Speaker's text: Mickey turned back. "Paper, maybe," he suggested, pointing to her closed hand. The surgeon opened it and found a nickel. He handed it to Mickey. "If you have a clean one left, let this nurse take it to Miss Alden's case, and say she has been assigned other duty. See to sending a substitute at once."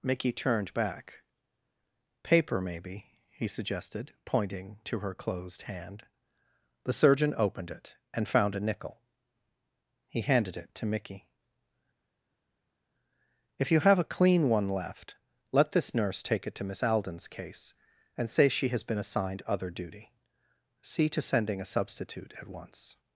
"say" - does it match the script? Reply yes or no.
yes